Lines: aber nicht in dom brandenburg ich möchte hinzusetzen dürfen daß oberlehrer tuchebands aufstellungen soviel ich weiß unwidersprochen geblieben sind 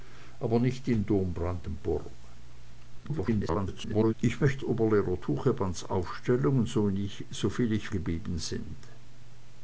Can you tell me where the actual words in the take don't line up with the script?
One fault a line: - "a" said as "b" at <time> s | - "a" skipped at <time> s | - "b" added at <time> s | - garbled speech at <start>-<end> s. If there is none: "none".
- garbled speech at 3.0-4.1 s
- "hinzusetzen dürfen daß" skipped at 4.6 s
- "weiß unwidersprochen" skipped at 7.9 s